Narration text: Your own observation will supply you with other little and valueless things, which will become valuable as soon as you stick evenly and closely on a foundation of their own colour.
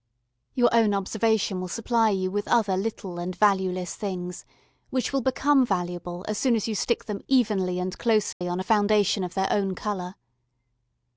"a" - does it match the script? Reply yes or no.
yes